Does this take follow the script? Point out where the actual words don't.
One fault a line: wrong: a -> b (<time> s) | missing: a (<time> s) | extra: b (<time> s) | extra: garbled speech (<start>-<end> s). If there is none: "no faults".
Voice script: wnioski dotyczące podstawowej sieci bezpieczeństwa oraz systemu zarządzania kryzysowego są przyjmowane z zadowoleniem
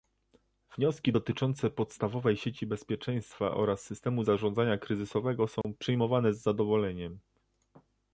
no faults